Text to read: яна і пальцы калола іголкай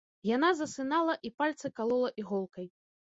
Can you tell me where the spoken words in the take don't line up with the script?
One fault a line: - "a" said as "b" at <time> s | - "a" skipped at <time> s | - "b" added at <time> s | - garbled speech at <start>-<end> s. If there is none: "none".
- "засынала" added at 0.6 s